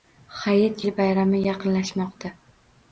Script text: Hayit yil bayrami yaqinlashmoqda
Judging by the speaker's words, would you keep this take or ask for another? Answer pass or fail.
pass